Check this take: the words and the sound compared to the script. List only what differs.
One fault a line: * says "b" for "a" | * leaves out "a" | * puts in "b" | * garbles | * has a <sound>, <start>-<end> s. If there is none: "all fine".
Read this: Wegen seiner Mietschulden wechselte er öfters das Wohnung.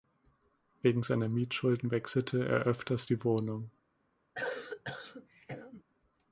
* says "die" for "das"
* has a cough, 4.4-5.8 s